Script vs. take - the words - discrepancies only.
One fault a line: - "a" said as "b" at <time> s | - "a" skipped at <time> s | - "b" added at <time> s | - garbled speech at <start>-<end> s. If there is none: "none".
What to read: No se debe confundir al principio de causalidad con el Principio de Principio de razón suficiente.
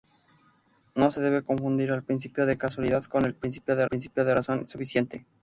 none